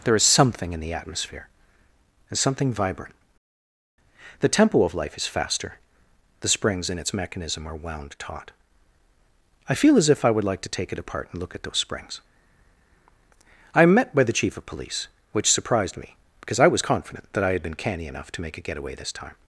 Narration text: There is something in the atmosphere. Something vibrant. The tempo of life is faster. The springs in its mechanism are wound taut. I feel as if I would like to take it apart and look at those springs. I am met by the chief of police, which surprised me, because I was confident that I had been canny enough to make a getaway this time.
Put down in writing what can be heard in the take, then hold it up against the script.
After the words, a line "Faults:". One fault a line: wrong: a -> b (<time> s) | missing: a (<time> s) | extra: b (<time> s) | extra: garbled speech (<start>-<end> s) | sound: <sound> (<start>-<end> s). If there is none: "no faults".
There is something in the atmosphere. and Something vibrant. The tempo of life is faster. The springs in its mechanism are wound taut. I feel as if I would like to take it apart and look at those springs. I am met by the chief of police, which surprised me, because I was confident that I had been canny enough to make a getaway this time.
Faults:
extra: and (2.3 s)